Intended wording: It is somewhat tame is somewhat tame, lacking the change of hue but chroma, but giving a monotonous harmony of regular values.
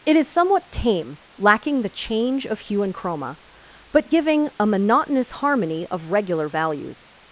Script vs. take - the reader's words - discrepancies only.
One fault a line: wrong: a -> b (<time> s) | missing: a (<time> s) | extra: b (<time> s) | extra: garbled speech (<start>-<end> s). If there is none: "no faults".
missing: is somewhat tame (1.2 s)
wrong: but -> and (2.8 s)